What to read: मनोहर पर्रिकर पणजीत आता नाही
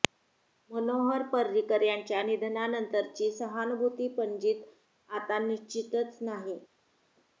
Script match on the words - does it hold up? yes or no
no